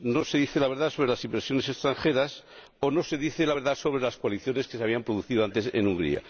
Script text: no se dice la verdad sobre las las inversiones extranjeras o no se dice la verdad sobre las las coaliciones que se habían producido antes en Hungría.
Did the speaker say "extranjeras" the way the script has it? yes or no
yes